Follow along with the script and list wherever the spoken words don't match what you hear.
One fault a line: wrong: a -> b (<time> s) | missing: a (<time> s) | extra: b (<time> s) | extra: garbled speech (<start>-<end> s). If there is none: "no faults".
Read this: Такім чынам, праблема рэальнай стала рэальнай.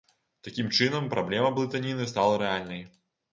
wrong: рэальнай -> блытаніны (1.6 s)